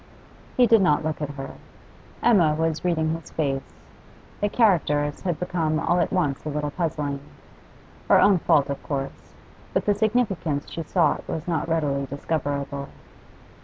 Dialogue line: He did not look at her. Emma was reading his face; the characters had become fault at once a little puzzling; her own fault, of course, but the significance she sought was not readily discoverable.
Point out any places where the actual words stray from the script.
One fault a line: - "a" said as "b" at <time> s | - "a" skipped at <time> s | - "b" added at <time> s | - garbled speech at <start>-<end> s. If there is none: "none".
- "fault" said as "all" at 5.8 s